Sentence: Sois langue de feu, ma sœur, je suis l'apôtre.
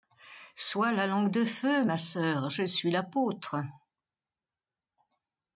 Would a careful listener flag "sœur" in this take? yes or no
no